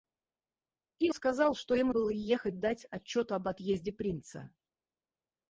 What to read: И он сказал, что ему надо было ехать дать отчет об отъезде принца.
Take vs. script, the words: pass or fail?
fail